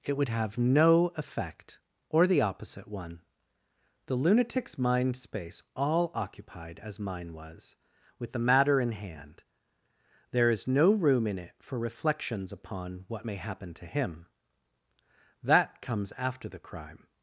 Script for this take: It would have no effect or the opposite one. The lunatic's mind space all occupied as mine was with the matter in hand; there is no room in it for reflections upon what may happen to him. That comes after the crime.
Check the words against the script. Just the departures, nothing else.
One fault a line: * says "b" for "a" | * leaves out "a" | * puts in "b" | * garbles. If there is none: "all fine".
all fine